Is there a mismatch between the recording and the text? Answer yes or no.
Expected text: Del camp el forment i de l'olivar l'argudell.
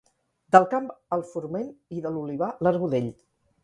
no